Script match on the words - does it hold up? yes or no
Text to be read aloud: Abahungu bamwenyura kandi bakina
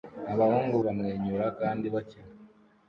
yes